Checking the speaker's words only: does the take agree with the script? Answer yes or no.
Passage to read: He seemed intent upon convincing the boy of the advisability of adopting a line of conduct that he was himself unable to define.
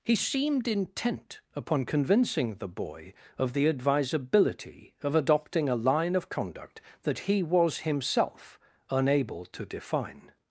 yes